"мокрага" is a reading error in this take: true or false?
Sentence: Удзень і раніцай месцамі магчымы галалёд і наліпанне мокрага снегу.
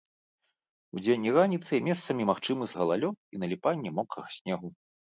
false